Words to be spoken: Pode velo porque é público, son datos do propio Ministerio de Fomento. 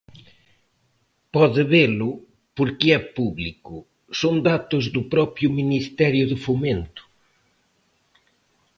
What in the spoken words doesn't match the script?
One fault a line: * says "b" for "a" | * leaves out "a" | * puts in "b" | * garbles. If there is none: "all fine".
all fine